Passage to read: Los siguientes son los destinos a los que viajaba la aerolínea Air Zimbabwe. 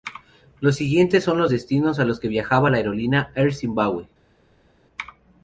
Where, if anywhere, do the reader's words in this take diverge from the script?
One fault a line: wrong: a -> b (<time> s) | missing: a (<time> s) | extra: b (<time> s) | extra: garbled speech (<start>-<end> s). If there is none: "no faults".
no faults